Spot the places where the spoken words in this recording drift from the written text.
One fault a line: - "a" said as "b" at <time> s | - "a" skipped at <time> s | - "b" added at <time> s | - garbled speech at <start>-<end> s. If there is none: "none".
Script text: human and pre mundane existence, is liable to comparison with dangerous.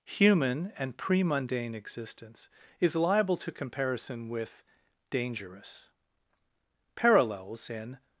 - "parallels in" added at 7.0 s